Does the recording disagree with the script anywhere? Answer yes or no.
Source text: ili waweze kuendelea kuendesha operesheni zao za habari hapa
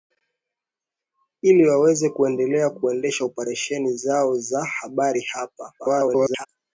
yes